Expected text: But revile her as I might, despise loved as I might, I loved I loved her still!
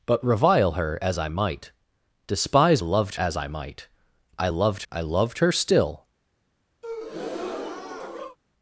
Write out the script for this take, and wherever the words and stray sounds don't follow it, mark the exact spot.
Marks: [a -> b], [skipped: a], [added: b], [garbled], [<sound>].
But revile her as I might, despise loved as I might, I loved I loved her still! [breath]